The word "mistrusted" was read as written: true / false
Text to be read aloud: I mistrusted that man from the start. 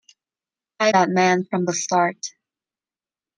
false